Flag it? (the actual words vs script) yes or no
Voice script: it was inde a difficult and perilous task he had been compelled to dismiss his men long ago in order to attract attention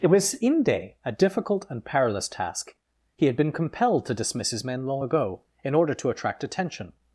no